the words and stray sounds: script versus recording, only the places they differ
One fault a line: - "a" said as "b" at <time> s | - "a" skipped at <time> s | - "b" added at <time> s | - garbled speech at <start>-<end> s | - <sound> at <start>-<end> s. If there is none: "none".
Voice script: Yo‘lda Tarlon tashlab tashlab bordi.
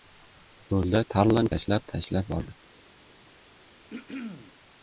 - throat clearing at 3.9-4.5 s